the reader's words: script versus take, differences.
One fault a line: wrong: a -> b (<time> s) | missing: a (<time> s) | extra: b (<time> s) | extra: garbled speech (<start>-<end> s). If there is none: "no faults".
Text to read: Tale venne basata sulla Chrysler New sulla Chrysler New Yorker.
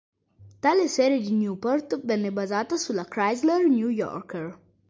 wrong: venne basata sulla Chrysler New -> serie di Newport venne basata (0.9 s)